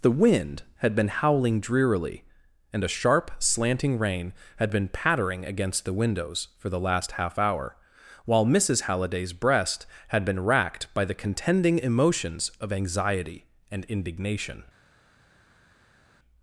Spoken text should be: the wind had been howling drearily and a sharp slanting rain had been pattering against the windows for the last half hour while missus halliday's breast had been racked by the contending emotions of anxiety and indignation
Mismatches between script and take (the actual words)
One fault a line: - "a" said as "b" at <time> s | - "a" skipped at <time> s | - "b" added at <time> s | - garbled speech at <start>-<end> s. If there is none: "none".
none